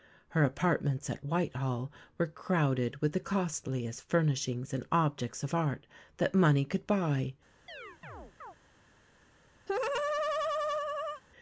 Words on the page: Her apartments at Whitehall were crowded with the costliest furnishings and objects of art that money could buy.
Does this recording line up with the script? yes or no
yes